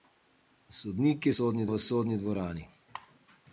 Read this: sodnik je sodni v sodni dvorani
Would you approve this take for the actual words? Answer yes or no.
yes